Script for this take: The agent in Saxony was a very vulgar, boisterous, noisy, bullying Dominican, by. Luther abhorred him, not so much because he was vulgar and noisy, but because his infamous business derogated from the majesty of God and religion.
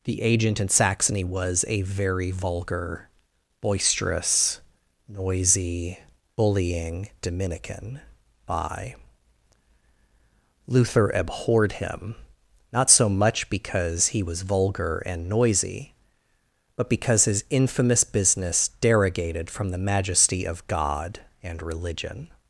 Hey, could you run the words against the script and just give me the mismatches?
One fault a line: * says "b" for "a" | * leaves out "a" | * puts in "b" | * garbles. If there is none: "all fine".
all fine